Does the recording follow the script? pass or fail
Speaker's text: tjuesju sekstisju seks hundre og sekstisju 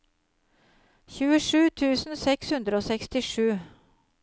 fail